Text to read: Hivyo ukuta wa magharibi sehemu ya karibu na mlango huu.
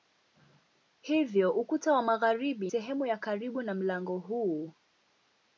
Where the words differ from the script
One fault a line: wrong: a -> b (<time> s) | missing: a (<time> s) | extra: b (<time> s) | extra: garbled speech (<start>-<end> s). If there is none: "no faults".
no faults